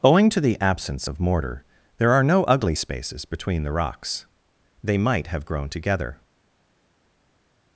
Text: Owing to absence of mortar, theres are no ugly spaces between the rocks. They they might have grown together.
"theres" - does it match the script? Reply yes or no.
no